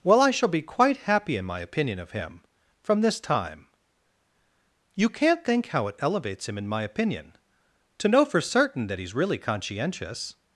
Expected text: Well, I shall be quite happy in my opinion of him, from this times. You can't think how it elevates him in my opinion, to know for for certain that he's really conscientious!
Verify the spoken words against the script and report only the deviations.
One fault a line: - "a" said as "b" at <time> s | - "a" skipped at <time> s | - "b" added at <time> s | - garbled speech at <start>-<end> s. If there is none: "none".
- "times" said as "time" at 3.2 s
- "for" skipped at 8.4 s